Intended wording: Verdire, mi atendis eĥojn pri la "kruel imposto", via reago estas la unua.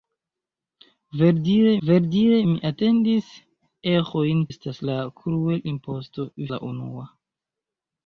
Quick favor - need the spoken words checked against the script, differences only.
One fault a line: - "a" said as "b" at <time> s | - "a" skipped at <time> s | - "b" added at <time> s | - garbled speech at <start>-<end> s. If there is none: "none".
- "verdire" added at 1.9 s
- "pri" said as "estas" at 4.5 s
- "via reago estas" skipped at 6.3 s